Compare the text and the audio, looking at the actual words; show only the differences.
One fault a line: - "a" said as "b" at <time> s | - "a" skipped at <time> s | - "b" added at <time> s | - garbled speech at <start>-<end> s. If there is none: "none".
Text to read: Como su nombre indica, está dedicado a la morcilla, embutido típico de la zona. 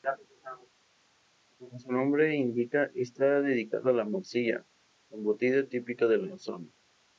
none